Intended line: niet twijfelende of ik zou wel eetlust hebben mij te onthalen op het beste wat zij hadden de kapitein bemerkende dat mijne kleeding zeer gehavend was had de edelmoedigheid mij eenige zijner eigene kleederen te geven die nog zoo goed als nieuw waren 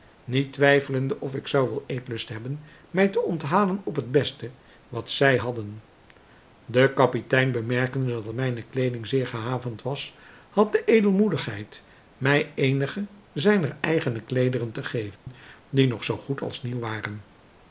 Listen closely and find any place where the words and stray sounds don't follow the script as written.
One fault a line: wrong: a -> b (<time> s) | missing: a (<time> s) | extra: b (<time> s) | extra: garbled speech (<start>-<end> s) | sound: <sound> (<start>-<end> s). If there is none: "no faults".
sound: dropout (15.2-15.3 s)